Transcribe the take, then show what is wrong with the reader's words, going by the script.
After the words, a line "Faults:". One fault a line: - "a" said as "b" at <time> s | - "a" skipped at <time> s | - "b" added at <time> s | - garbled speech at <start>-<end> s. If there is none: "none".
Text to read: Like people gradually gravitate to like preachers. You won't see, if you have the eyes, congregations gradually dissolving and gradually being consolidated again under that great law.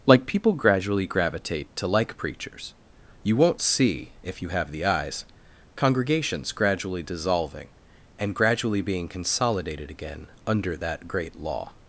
Like people gradually gravitate to like preachers. You won't see, if you have the eyes, congregations gradually dissolving and gradually being consolidated again under that great law.
Faults:
none